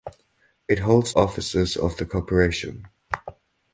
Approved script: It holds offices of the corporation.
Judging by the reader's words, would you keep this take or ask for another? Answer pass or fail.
pass